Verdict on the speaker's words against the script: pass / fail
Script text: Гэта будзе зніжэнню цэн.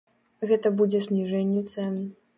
pass